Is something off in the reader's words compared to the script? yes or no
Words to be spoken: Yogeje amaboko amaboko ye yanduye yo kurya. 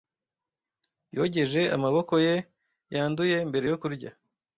yes